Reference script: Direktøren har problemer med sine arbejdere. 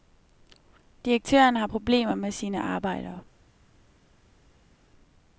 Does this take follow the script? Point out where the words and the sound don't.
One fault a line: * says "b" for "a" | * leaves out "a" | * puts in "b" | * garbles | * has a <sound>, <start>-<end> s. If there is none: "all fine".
all fine